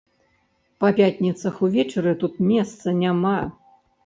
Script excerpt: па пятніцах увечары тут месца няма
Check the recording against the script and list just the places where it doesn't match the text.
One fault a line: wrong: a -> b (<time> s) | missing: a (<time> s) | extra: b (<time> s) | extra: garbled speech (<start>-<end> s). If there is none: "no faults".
no faults